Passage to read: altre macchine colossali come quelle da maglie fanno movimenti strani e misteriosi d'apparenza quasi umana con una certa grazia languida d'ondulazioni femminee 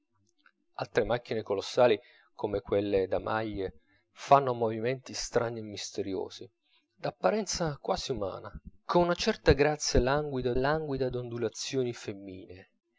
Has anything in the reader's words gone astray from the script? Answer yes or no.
yes